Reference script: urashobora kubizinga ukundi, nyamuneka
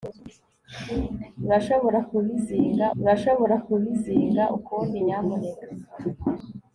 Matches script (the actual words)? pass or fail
fail